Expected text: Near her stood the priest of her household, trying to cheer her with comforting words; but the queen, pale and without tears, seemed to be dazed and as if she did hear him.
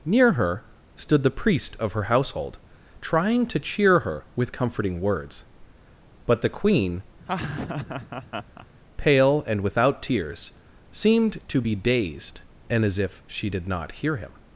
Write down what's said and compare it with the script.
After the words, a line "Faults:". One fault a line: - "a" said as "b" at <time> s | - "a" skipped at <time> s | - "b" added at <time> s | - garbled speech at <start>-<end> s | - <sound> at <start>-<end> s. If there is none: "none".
Near her stood the priest of her household, trying to cheer her with comforting words; but the queen, pale and without tears, seemed to be dazed and as if she did not hear him.
Faults:
- laugh at 7.2-8.7 s
- "not" added at 13.7 s